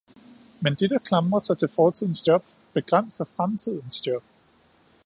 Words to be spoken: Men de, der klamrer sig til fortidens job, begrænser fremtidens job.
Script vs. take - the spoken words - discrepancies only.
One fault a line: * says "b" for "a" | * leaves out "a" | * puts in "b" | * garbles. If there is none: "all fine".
all fine